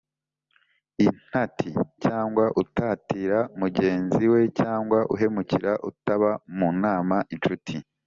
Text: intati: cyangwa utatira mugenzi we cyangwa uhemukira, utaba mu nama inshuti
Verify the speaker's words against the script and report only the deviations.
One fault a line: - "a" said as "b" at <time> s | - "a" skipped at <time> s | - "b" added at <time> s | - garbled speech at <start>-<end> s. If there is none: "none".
none